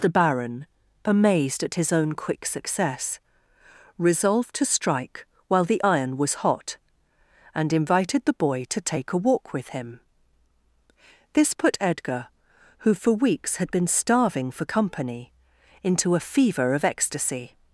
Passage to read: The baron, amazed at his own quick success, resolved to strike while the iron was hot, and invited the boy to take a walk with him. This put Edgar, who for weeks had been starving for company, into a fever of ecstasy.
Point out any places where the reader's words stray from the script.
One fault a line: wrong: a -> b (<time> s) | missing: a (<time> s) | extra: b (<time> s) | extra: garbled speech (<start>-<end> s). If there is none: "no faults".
no faults